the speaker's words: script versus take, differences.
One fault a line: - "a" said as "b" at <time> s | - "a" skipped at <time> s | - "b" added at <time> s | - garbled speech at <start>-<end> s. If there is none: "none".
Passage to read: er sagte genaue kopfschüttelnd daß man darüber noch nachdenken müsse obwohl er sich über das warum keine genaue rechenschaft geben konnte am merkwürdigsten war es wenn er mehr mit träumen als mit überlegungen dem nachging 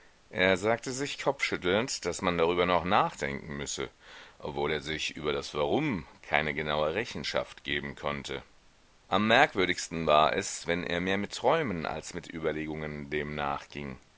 - "genaue" said as "sich" at 0.9 s